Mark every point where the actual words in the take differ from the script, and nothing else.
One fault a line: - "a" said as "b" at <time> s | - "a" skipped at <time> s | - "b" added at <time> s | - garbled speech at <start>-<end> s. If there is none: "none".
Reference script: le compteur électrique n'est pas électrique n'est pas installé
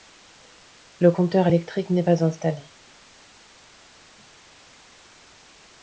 - "électrique n'est pas" skipped at 2.2 s